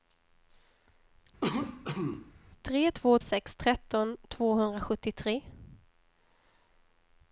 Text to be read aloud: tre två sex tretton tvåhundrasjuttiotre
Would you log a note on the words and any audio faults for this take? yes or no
yes